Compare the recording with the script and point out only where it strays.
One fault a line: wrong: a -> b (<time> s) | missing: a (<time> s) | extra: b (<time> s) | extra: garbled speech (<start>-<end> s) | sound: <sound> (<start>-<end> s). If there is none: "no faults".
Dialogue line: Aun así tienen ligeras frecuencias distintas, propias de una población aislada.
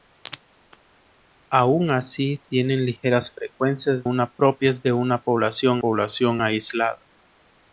wrong: distintas -> una (4.0 s)
extra: población (5.8 s)